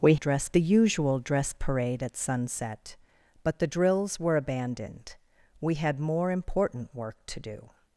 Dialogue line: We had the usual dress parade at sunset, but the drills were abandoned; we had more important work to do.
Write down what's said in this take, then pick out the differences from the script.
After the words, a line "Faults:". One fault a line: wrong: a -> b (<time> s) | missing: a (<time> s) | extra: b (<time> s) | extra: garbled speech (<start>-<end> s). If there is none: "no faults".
We dress the usual dress parade at sunset, but the drills were abandoned; we had more important work to do.
Faults:
wrong: had -> dress (0.1 s)